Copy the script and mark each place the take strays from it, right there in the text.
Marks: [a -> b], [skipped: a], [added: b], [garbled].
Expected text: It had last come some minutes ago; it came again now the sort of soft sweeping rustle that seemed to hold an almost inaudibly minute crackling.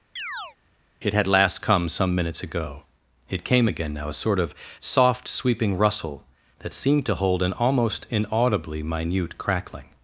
It had last come some minutes ago; it came again now [the -> a] sort of soft sweeping rustle that seemed to hold an almost inaudibly minute crackling.